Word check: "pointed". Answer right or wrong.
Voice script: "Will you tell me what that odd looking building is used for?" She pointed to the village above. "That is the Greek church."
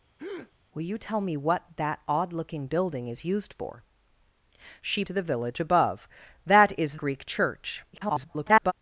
wrong